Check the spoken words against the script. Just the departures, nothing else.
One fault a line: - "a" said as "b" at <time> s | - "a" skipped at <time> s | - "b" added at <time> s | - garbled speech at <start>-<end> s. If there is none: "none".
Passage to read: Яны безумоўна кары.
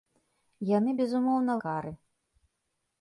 none